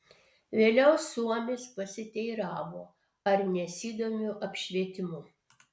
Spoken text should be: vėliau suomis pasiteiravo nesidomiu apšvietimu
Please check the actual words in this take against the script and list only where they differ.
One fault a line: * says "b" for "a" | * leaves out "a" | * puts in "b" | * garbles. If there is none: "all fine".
* puts in "ar"